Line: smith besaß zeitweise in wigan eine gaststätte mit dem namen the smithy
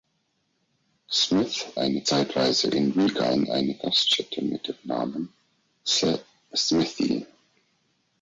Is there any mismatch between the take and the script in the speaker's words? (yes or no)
yes